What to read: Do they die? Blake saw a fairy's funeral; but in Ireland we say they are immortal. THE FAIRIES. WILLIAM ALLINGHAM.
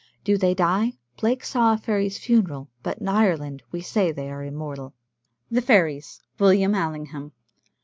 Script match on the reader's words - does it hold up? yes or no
yes